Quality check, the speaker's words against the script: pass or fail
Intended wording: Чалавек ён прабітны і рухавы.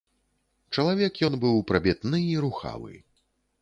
fail